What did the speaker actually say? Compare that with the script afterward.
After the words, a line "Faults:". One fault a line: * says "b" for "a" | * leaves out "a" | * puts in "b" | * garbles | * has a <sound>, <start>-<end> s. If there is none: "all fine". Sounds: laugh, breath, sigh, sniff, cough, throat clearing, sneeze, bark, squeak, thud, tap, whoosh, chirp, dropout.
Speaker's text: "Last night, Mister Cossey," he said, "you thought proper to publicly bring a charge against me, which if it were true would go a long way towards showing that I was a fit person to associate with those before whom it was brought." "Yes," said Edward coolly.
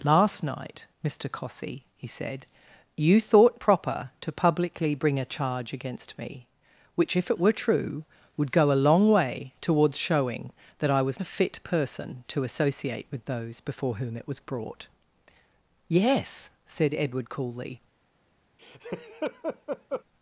"Last night, Mister Cossey," he said, "you thought proper to publicly bring a charge against me, which if it were true would go a long way towards showing that I was a fit person to associate with those before whom it was brought." "Yes," said Edward coolly.
Faults:
* has a laugh, 18.6-20.0 s